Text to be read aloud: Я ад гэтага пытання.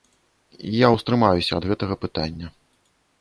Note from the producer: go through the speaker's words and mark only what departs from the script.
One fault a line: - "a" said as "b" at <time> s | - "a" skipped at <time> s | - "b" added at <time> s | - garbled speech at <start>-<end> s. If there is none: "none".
- "ўстрымаюся" added at 0.9 s